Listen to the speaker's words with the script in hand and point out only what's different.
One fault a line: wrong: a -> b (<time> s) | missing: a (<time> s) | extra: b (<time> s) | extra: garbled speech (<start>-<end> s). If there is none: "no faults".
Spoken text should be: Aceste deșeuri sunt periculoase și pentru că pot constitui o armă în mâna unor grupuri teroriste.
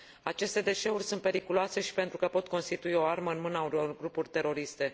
no faults